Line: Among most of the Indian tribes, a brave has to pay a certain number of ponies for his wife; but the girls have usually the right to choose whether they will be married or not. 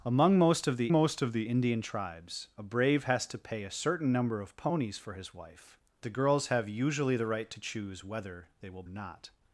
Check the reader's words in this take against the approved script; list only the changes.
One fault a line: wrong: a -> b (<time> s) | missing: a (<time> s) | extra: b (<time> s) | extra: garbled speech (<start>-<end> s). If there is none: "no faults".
extra: most of the (0.9 s)
missing: but (5.8 s)
missing: be married or (8.8 s)